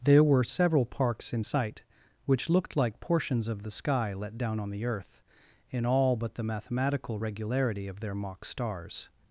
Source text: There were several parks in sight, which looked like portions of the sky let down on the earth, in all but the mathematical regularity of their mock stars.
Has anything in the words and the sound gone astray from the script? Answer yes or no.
no